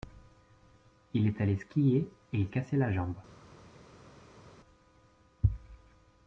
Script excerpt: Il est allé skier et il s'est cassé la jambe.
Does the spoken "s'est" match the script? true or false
false